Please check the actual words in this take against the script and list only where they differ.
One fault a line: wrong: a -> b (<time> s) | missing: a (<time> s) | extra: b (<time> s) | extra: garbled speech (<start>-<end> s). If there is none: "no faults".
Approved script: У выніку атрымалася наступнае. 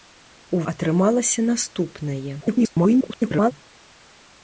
missing: выніку (0.6 s)
extra: garbled speech (2.4-3.5 s)